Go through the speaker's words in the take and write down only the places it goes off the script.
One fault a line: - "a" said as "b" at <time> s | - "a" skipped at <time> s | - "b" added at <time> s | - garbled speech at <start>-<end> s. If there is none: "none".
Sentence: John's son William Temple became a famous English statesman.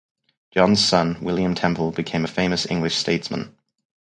none